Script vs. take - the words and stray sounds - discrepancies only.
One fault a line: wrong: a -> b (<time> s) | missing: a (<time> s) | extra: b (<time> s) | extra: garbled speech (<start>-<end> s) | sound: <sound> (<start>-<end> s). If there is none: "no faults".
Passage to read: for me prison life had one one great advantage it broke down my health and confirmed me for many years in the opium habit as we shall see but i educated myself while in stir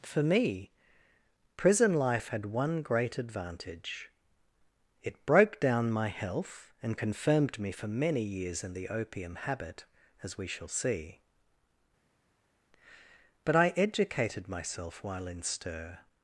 missing: one (2.8 s)